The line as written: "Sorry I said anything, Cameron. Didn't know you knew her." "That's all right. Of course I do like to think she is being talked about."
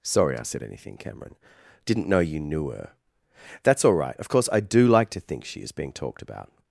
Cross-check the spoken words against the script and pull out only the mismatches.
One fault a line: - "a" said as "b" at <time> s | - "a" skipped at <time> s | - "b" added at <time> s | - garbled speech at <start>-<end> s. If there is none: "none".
none